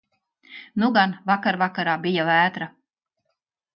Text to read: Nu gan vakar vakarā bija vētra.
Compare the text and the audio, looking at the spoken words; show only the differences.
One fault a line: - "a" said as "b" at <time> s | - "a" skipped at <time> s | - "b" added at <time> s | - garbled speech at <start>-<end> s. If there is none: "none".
none